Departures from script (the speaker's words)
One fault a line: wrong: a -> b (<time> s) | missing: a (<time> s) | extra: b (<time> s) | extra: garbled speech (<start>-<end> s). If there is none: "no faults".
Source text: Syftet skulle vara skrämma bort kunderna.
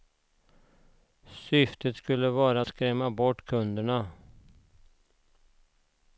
no faults